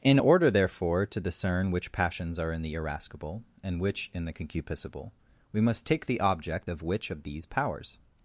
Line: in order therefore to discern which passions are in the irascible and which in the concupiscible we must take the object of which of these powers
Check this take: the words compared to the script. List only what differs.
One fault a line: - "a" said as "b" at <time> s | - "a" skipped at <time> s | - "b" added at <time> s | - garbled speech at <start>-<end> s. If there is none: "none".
none